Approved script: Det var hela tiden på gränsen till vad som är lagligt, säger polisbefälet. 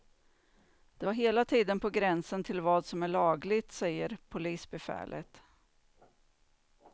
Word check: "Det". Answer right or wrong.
right